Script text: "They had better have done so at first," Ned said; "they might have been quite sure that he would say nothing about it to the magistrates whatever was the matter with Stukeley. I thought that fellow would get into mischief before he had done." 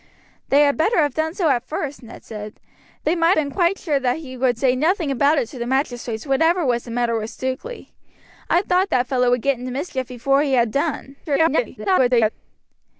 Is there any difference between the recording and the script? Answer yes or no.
yes